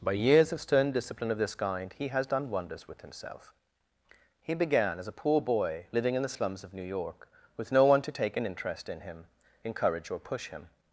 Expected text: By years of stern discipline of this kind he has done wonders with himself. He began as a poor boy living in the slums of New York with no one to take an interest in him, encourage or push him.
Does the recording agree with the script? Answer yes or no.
yes